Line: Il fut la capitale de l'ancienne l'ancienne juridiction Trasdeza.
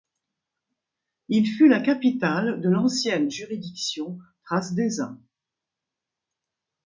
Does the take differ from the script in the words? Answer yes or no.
yes